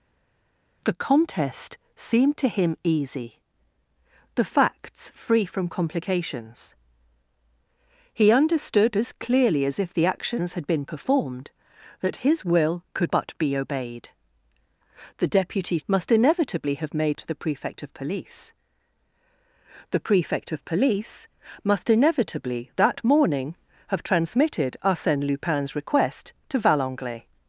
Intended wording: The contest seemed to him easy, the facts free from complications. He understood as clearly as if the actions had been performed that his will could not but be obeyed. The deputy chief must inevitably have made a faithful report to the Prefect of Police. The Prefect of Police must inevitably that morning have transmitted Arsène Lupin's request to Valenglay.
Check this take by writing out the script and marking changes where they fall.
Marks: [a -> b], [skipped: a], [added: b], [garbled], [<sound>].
The contest seemed to him easy, the facts free from complications. He understood as clearly as if the actions had been performed that his will could [skipped: not] but be obeyed. The deputy [skipped: chief] must inevitably have made [skipped: a faithful report] to the Prefect of Police. The Prefect of Police must inevitably that morning have transmitted Arsène Lupin's request to Valenglay.